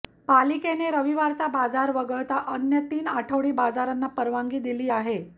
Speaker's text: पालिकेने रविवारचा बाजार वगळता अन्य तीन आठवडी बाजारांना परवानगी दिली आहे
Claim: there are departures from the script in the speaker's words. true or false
false